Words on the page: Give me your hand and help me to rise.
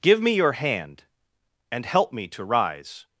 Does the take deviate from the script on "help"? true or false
false